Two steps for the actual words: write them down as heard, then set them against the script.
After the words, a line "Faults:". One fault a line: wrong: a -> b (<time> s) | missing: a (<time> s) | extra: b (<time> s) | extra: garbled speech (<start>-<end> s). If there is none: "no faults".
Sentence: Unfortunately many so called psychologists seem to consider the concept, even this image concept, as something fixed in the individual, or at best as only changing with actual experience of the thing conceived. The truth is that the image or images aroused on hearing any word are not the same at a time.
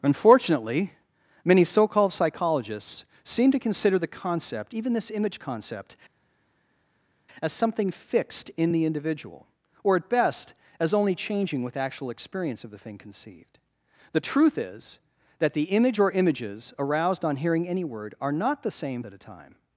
Unfortunately many so called psychologists seem to consider the concept, even this image concept, as something fixed in the individual, or at best as only changing with actual experience of the thing conceived. The truth is that the image or images aroused on hearing any word are not the same at a time.
Faults:
no faults